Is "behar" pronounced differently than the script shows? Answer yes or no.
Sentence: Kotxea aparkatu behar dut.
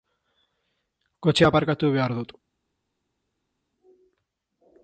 no